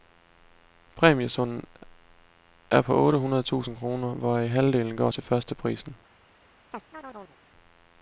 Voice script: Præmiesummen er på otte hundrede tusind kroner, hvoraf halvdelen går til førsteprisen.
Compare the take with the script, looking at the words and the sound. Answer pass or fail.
fail